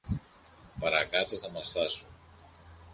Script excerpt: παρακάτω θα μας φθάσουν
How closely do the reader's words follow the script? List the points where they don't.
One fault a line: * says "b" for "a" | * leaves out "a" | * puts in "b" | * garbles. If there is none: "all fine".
all fine